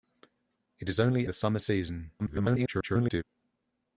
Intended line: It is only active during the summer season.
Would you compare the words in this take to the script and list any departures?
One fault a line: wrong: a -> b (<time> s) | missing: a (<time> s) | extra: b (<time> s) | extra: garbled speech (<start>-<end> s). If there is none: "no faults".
missing: active during (1.3 s)
extra: garbled speech (2.2-3.2 s)